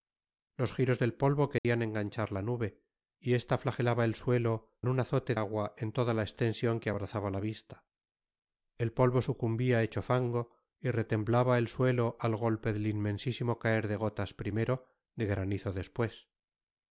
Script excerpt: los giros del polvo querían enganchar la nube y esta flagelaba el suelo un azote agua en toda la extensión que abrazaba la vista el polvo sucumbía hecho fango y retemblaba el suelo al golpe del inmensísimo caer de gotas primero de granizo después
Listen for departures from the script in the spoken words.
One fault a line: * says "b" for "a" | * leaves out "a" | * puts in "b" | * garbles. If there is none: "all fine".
all fine